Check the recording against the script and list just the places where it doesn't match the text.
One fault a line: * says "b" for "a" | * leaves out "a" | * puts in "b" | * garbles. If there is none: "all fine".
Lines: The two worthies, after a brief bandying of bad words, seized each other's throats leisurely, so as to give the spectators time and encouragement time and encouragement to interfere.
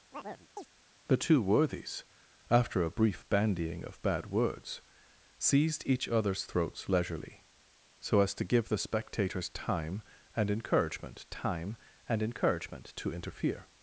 all fine